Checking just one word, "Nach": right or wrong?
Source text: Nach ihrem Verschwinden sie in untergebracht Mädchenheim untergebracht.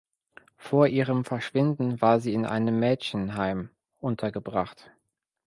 wrong